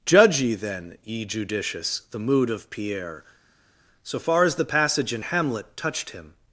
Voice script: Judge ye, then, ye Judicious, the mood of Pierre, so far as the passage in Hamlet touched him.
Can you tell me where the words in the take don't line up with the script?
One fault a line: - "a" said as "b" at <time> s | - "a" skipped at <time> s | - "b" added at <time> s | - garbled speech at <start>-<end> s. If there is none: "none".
none